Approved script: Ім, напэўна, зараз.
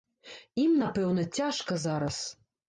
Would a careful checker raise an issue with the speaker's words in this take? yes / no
yes